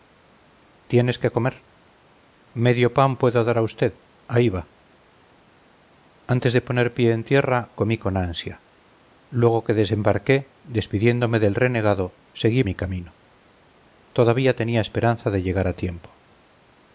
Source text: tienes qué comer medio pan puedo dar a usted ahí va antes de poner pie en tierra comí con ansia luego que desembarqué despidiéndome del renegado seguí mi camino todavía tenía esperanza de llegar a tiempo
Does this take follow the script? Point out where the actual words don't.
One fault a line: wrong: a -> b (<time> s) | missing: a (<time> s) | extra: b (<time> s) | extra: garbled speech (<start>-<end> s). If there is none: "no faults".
no faults